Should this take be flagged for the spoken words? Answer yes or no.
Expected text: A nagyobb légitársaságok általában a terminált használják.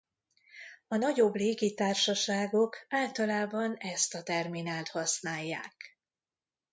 yes